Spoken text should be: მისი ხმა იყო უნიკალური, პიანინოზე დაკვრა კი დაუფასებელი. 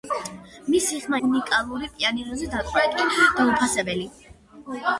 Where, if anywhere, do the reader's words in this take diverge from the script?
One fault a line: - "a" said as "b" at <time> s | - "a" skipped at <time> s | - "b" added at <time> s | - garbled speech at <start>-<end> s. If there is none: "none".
- "იყო" skipped at 1.2 s